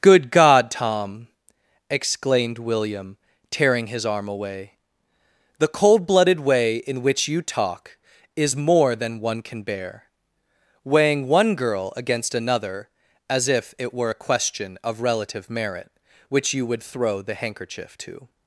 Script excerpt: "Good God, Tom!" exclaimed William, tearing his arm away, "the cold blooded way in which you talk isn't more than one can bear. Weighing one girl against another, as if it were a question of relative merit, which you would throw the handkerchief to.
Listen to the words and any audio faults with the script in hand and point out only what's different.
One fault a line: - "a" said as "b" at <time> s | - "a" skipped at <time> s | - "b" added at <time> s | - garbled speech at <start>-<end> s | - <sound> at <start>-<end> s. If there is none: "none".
- "isn't" said as "is" at 8.3 s